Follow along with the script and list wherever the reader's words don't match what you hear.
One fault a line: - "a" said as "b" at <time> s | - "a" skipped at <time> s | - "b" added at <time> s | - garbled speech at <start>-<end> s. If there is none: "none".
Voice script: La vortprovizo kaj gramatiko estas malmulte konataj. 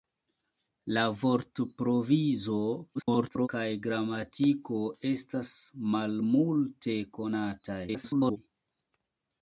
- garbled speech at 2.9-3.5 s
- garbled speech at 7.9-8.4 s